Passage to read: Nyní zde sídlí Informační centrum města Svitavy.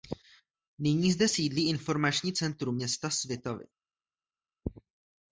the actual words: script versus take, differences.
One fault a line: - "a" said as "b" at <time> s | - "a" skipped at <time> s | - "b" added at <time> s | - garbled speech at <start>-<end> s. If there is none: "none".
none